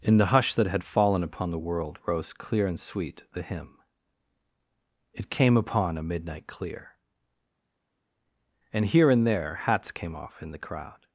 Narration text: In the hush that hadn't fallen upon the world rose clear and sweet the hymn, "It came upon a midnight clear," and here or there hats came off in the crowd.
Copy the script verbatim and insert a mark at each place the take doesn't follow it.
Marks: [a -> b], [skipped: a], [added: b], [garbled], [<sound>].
In the hush that [hadn't -> had] fallen upon the world rose clear and sweet the hymn, "It came upon a midnight clear," and here [or -> and] there hats came off in the crowd.